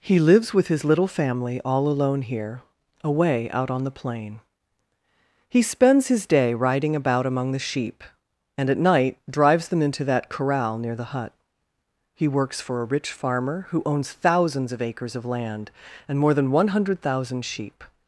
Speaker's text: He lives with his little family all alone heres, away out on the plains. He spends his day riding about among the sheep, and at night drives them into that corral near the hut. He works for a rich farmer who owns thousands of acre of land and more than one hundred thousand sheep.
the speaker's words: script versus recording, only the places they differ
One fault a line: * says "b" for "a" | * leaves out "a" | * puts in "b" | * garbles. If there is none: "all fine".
* says "here" for "heres"
* says "plain" for "plains"
* says "acres" for "acre"